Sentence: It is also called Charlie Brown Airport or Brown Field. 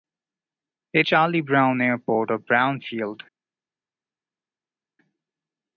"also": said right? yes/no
no